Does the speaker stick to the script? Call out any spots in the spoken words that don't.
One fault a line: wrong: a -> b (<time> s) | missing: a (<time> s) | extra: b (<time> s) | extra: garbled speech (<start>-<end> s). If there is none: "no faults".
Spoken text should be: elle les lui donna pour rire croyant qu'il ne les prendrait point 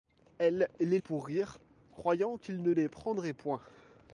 missing: lui donna (1.0 s)